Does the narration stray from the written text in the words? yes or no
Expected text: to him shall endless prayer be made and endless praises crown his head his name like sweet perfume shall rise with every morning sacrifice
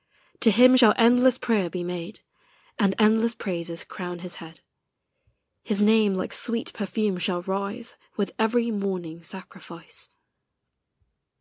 no